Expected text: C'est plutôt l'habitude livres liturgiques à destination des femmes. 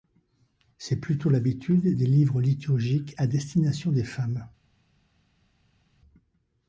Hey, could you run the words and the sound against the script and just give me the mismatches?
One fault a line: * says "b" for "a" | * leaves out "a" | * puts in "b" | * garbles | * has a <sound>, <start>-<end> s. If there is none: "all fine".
* puts in "des"